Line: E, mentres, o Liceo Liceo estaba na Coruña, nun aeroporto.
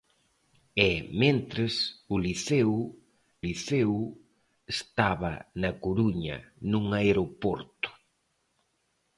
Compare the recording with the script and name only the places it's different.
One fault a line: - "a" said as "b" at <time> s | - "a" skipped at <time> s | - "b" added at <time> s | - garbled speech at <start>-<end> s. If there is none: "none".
none